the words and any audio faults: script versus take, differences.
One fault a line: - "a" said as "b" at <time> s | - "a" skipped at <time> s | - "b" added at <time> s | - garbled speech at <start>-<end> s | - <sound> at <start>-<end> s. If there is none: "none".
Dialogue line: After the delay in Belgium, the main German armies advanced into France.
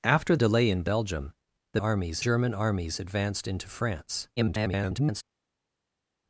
- "the" skipped at 0.3 s
- "main" said as "armies" at 1.8 s
- garbled speech at 4.4-5.2 s